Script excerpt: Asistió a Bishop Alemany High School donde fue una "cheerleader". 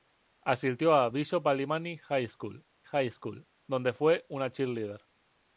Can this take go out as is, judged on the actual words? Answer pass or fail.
fail